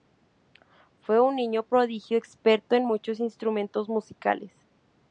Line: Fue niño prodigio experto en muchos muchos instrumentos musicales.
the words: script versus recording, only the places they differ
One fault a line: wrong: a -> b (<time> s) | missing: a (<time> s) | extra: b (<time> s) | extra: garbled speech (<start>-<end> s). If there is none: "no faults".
extra: un (1.2 s)
missing: muchos (3.2 s)